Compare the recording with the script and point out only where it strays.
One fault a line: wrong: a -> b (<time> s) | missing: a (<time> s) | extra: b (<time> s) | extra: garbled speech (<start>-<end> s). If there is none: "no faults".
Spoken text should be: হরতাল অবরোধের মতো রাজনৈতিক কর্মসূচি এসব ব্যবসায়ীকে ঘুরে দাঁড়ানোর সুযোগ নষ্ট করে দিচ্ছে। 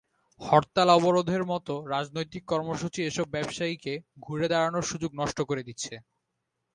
no faults